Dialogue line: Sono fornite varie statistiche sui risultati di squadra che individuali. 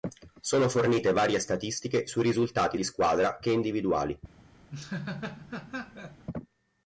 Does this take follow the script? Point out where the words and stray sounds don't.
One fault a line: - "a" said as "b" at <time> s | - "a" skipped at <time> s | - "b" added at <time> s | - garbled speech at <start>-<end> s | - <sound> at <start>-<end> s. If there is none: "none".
- laugh at 4.7-6.2 s